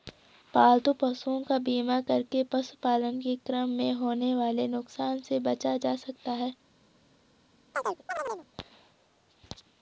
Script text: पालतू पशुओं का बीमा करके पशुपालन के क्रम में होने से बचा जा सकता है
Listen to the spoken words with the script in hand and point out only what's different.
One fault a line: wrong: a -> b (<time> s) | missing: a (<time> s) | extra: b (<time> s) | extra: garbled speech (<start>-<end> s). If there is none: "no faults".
extra: वाले नुकसान (4.3 s)